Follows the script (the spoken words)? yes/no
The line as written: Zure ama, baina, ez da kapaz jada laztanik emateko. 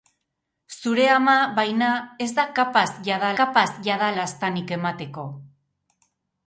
no